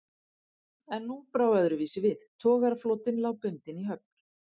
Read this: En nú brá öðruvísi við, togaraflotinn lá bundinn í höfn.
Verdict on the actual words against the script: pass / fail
pass